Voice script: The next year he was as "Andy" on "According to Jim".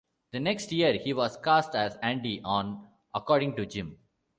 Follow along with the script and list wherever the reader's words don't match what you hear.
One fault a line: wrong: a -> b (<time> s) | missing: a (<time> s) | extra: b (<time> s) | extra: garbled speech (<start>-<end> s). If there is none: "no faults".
extra: cast (1.4 s)